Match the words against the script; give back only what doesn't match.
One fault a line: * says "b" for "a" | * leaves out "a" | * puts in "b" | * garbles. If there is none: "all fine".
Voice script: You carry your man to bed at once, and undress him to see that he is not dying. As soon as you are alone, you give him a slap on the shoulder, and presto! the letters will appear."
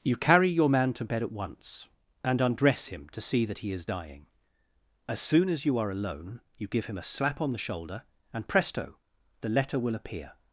* leaves out "not"
* says "letter" for "letters"